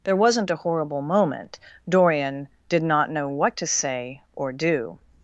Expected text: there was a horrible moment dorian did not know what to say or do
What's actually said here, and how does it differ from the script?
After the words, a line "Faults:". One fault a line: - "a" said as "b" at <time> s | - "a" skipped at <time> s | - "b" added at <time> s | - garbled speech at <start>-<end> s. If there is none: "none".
there wasn't a horrible moment dorian did not know what to say or do
Faults:
- "was" said as "wasn't" at 0.1 s